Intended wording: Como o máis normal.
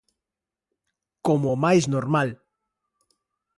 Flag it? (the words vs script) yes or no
no